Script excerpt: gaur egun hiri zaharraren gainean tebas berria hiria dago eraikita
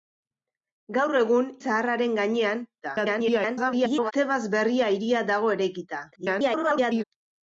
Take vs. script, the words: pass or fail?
fail